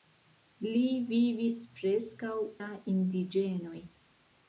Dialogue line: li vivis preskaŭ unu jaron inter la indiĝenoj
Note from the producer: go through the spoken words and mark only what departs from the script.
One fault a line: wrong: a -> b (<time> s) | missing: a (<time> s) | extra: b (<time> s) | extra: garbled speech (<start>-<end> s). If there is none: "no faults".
missing: unu jaron inter (2.3 s)